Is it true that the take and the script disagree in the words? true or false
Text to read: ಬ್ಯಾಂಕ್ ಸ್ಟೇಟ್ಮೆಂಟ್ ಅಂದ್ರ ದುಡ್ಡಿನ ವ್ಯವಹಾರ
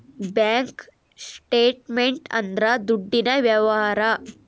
false